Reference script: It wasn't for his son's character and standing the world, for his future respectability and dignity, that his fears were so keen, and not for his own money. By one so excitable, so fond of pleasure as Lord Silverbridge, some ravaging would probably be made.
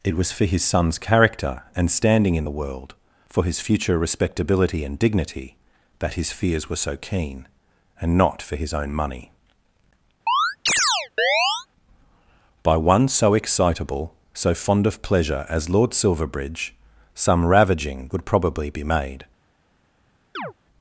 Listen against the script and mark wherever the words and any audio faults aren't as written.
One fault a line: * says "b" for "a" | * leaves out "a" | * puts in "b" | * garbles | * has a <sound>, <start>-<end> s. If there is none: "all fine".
* says "was" for "wasn't"
* puts in "in"
* has a chirp, 10.3-11.7 s
* has a chirp, 20.3-20.5 s